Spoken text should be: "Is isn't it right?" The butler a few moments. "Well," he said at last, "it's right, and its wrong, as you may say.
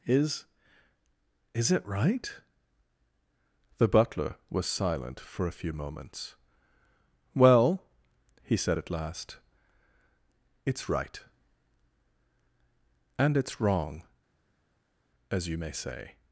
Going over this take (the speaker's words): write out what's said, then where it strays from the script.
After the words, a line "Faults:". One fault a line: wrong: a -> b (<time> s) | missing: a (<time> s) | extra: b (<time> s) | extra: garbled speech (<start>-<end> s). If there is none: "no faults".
"Is is it right?" The butler was silent for a few moments. "Well," he said at last, "it's right, and its wrong, as you may say.
Faults:
wrong: isn't -> is (1.5 s)
extra: was silent for (4.5 s)